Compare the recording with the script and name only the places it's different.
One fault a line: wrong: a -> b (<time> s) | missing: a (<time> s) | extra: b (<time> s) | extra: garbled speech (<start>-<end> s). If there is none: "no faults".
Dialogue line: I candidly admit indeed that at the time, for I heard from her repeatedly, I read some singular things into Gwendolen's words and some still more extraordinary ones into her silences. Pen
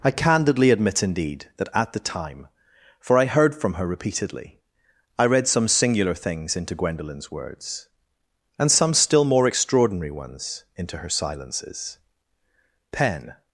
no faults